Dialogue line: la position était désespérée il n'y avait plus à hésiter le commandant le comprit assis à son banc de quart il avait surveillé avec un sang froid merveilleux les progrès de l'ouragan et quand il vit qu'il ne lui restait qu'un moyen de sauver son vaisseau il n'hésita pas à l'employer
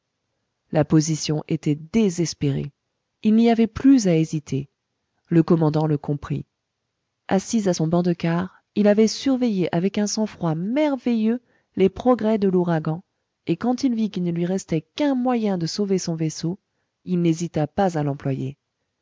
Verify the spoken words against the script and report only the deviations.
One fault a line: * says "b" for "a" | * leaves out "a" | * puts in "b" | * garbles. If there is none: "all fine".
all fine